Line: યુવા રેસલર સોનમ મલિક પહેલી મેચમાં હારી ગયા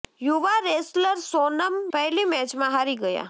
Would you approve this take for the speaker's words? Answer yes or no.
no